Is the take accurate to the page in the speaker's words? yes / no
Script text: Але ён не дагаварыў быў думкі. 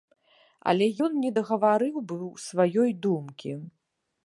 no